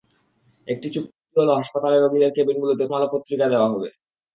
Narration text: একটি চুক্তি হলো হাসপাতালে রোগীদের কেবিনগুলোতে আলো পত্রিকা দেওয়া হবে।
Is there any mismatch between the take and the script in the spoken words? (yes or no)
no